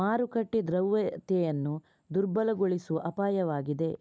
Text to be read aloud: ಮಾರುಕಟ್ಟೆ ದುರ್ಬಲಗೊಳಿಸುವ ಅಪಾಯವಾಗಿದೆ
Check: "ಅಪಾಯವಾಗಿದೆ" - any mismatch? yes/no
no